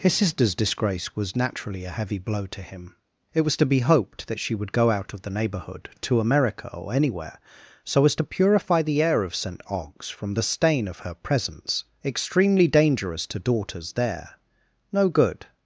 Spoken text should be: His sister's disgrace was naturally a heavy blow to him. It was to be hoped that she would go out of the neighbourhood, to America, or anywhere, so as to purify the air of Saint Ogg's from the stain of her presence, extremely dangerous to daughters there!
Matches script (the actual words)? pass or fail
fail